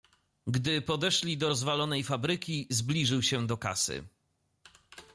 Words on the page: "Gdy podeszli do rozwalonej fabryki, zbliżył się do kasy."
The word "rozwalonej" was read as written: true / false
true